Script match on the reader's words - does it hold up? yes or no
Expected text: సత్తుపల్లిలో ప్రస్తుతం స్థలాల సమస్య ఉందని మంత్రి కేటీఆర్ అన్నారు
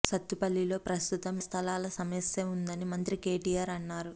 yes